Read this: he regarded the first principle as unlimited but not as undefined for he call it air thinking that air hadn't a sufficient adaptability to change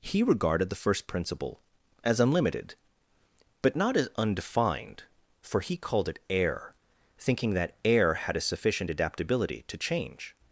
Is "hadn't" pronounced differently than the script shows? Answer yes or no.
yes